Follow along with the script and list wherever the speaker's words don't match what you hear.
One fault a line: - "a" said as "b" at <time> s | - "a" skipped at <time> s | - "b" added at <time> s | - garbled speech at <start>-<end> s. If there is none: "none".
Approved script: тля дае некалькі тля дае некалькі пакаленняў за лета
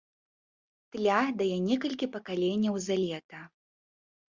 - "тля дае некалькі" skipped at 2.1 s